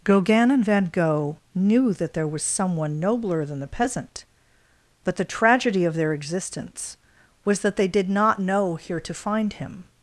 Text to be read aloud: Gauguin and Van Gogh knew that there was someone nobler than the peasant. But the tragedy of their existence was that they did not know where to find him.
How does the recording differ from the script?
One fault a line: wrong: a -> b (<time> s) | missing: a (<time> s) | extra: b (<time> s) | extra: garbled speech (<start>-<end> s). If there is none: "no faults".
wrong: where -> here (8.8 s)